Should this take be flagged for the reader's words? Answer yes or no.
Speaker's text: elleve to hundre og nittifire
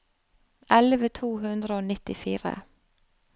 no